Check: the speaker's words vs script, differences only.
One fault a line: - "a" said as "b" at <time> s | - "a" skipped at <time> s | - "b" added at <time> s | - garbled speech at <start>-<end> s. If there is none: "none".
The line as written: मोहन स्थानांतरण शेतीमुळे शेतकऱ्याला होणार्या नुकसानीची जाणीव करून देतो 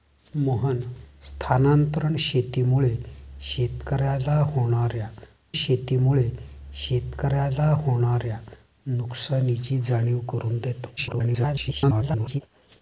- "शेतीमुळे शेतकऱ्याला होणार्या" added at 5.5 s
- garbled speech at 11.0-12.4 s